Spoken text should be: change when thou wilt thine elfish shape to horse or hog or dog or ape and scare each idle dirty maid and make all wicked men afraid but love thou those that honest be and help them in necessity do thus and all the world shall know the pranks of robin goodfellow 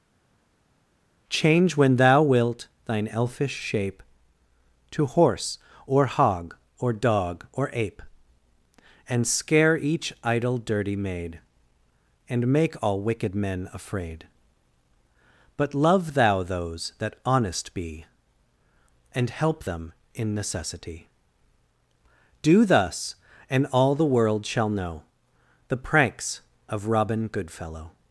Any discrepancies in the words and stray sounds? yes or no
no